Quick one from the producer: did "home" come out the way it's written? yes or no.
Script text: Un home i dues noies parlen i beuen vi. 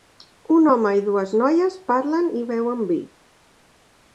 yes